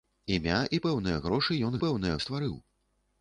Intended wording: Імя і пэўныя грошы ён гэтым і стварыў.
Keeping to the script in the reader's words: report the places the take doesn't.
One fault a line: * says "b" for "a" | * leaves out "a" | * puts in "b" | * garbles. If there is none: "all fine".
* says "пэўныя" for "гэтым"